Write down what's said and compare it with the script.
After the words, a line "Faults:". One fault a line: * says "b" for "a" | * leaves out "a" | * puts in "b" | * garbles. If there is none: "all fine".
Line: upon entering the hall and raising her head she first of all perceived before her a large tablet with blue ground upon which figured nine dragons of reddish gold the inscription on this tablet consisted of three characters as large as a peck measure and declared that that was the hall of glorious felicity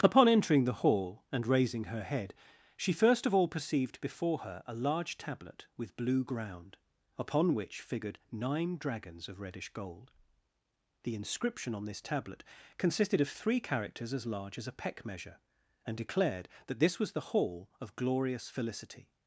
upon entering the hall and raising her head she first of all perceived before her a large tablet with blue ground upon which figured nine dragons of reddish gold the inscription on this tablet consisted of three characters as large as a peck measure and declared that this was the hall of glorious felicity
Faults:
* says "this" for "that"